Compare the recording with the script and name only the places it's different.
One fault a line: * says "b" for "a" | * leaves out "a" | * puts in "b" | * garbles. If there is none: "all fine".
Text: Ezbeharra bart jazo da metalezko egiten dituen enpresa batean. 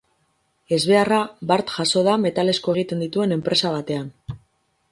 all fine